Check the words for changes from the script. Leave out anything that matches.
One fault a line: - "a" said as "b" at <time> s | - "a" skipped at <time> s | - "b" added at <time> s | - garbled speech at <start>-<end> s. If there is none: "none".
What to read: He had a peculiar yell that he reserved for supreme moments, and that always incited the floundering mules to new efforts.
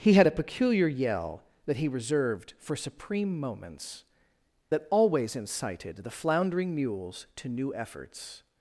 - "and" skipped at 4.0 s